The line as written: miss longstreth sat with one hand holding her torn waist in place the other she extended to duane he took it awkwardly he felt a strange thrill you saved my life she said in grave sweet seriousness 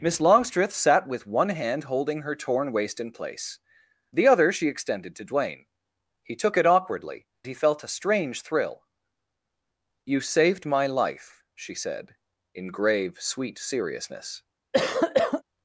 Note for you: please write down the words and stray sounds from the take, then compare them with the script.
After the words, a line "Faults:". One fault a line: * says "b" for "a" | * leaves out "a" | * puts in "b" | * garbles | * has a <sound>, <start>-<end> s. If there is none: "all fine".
miss longstreth sat with one hand holding her torn waist in place the other she extended to duane he took it awkwardly he felt a strange thrill you saved my life she said in grave sweet seriousness
Faults:
* has a cough, 14.7-15.4 s